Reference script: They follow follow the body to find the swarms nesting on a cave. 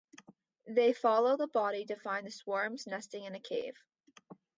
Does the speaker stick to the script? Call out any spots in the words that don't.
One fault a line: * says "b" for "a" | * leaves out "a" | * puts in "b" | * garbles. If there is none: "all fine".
* leaves out "follow"
* says "in" for "on"